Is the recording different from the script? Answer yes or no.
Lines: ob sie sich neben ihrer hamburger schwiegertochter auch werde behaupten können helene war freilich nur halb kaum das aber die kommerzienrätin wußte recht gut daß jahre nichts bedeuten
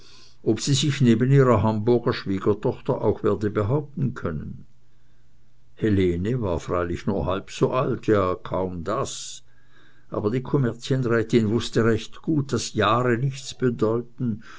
yes